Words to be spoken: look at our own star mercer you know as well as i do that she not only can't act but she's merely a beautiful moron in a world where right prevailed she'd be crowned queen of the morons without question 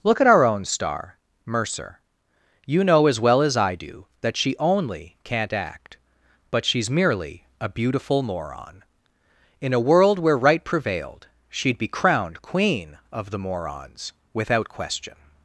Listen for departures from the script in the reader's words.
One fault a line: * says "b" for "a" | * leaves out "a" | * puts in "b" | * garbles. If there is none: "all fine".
* leaves out "not"